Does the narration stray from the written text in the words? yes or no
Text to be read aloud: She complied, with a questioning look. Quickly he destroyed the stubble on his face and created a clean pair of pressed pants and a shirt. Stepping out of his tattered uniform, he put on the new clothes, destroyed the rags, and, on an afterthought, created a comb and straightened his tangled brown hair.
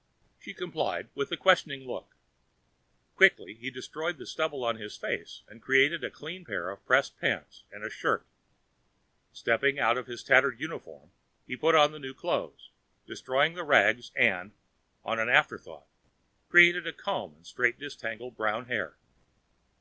no